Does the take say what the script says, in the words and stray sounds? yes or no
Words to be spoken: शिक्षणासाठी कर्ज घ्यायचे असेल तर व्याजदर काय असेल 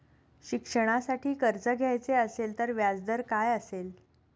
yes